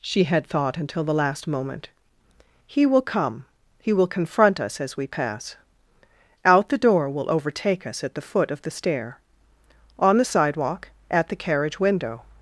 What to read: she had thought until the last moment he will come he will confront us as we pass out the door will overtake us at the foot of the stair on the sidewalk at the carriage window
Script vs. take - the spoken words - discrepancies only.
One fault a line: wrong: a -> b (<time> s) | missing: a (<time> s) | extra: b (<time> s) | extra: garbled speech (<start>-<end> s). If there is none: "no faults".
no faults